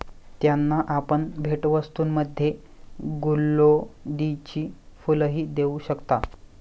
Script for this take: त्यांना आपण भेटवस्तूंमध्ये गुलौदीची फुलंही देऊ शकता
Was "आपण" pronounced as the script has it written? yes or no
yes